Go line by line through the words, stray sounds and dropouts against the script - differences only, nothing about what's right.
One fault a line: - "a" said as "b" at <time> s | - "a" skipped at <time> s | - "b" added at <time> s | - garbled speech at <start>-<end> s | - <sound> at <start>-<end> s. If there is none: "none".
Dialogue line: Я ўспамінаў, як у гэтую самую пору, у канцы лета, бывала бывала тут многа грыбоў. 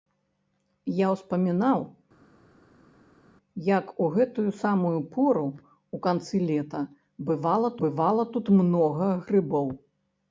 none